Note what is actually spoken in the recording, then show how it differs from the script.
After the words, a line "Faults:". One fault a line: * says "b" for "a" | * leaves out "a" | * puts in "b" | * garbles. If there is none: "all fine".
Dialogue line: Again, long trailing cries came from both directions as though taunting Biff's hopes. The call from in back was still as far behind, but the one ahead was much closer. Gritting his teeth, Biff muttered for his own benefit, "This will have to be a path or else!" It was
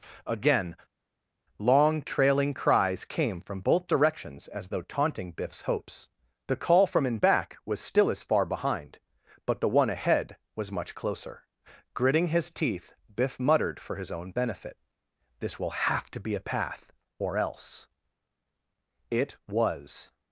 Again, long trailing cries came from both directions as though taunting Biff's hopes. The call from in back was still as far behind, but the one ahead was much closer. Gritting his teeth, Biff muttered for his own benefit, "This will have to be a path or else!" It was
Faults:
all fine